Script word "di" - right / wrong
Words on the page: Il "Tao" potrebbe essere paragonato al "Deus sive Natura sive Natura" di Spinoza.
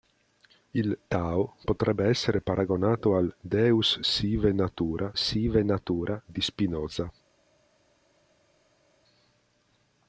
right